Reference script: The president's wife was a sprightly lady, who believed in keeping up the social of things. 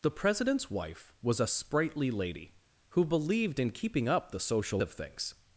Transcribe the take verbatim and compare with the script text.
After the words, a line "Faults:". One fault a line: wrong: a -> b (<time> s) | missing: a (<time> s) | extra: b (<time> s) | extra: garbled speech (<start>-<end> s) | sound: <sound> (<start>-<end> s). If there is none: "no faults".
The president's wife was a sprightly lady, who believed in keeping up the social of things.
Faults:
no faults